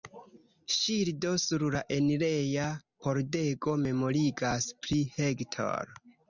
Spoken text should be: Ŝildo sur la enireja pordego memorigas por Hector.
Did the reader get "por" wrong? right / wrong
wrong